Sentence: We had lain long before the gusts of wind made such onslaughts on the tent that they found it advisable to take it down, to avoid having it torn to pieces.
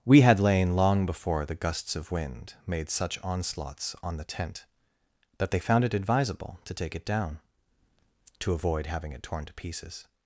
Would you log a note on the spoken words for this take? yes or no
no